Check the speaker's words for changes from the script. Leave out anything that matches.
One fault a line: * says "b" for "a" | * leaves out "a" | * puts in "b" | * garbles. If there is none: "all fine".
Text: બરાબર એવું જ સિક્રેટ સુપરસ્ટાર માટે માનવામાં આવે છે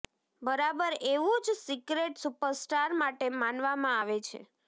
all fine